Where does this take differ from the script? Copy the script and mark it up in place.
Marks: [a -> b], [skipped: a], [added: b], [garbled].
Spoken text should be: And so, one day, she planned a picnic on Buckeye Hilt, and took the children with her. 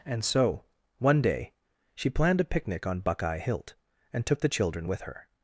And so, one day, she planned a picnic on Buckeye Hilt, and took the children with her.